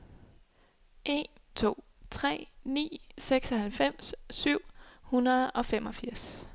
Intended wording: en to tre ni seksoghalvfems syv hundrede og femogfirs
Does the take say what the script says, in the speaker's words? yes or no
yes